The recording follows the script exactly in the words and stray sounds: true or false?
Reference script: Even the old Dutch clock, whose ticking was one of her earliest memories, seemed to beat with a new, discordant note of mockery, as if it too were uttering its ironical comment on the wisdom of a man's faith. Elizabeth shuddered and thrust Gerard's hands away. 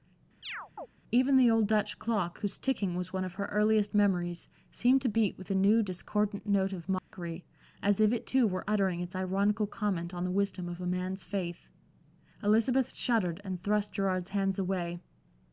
false